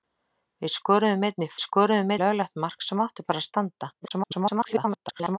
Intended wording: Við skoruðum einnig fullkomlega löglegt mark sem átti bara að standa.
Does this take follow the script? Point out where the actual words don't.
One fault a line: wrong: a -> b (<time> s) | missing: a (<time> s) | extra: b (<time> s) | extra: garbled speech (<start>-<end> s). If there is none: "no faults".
wrong: fullkomlega -> skoruðum (1.6 s)
extra: garbled speech (4.0-5.4 s)